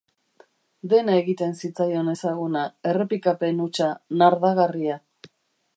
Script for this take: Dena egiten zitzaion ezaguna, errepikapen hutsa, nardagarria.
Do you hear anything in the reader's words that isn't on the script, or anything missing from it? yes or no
no